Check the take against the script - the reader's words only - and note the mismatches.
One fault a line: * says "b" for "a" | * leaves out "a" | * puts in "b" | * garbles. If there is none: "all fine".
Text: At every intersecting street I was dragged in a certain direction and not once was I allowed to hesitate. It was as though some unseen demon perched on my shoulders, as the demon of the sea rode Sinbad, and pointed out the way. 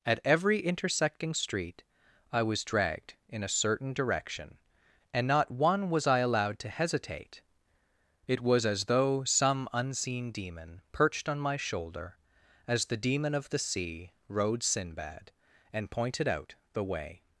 * says "one" for "once"
* says "shoulder" for "shoulders"